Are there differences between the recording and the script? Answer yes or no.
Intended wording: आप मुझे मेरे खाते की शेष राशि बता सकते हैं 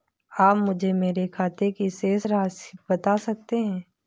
no